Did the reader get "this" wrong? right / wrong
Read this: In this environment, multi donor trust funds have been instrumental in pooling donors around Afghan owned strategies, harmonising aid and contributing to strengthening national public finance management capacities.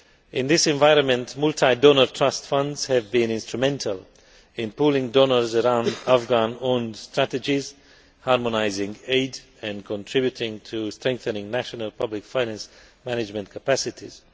right